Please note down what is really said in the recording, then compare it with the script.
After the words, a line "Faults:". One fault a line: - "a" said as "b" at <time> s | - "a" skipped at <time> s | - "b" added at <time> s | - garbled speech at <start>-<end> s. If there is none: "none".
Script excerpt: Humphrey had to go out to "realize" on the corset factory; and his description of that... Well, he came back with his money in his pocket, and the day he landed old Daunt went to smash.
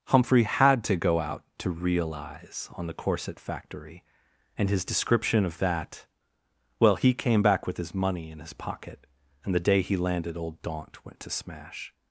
Humphrey had to go out to "realize" on the corset factory; and his description of that... Well, he came back with his money in his pocket, and the day he landed old Daunt went to smash.
Faults:
none